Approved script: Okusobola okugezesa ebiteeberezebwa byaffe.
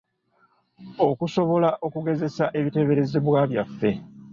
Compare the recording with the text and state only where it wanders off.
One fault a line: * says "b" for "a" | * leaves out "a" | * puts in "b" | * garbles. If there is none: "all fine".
all fine